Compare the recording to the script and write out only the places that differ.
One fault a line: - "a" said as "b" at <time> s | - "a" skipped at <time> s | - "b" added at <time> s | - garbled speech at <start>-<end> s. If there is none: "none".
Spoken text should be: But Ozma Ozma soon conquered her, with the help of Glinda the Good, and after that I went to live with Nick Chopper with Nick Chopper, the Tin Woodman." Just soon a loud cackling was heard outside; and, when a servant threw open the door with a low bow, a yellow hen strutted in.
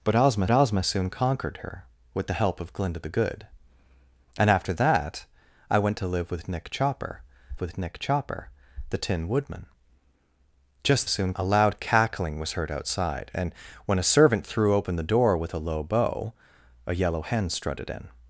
none